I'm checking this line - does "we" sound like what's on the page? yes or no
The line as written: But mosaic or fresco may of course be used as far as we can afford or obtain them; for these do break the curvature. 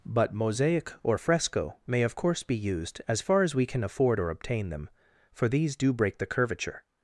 yes